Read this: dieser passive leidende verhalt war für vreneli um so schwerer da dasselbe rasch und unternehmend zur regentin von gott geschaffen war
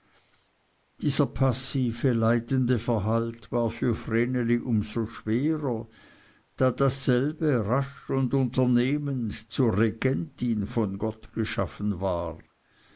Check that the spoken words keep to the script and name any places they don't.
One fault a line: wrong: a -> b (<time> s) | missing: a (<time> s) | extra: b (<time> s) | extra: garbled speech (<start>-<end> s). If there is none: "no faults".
no faults